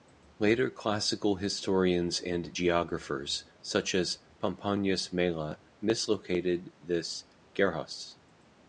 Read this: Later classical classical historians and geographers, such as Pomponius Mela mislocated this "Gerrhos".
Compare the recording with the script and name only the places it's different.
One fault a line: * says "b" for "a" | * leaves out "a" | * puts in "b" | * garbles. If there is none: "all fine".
* leaves out "classical"